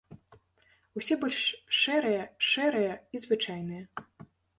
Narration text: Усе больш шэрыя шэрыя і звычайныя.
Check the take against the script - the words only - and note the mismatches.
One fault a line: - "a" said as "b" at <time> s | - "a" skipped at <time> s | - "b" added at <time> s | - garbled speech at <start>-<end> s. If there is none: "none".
none